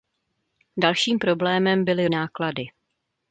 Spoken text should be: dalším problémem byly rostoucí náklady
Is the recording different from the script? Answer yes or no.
yes